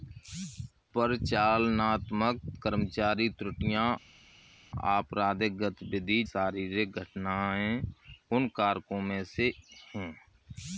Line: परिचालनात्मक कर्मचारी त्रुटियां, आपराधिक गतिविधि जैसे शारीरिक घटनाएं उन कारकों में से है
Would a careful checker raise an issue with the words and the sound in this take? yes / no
yes